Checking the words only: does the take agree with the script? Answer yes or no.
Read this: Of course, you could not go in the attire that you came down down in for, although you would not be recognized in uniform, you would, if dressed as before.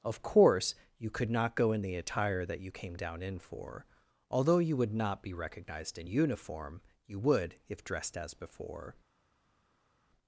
no